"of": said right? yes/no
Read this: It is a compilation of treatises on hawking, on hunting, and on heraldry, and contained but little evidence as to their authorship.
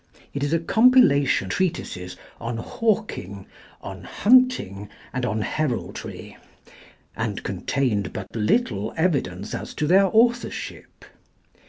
no